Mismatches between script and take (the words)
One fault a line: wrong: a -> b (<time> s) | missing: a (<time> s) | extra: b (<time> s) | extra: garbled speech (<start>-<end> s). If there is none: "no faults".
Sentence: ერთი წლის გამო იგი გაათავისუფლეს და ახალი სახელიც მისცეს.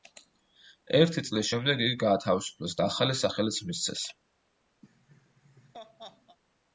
wrong: გამო -> შემდეგ (1.5 s)